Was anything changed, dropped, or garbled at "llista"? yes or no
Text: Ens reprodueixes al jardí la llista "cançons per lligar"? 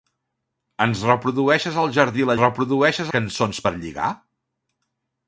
yes